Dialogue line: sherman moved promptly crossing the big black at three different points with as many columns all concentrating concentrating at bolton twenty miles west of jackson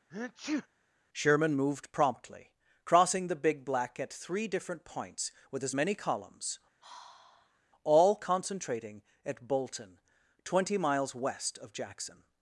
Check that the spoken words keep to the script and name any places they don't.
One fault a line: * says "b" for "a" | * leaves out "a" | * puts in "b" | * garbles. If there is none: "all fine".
* leaves out "concentrating"